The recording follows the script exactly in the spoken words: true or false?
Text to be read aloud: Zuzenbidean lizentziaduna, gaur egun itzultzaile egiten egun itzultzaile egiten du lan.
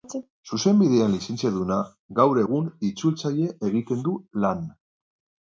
false